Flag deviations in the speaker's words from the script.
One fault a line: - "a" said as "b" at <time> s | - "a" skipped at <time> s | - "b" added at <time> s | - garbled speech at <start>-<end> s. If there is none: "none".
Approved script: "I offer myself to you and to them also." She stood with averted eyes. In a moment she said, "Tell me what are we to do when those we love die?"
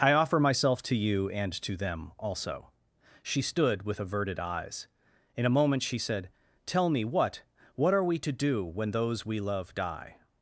- "what" added at 7.7 s